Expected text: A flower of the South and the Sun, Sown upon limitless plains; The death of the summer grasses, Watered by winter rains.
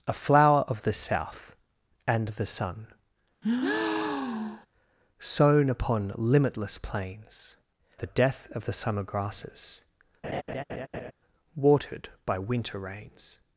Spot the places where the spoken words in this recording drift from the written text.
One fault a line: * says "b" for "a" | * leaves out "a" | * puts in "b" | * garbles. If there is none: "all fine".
all fine